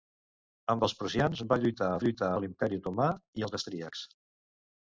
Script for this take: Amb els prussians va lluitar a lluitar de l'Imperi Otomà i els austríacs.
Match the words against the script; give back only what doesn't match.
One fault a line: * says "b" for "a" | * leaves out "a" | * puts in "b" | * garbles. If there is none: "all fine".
all fine